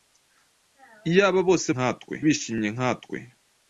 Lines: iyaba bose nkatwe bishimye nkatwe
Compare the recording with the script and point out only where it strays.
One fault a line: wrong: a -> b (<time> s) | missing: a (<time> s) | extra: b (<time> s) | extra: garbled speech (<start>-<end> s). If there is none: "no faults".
no faults